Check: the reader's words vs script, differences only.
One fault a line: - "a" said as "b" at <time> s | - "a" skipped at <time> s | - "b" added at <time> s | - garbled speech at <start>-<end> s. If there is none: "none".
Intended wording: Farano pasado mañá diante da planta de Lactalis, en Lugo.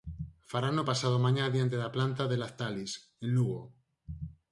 none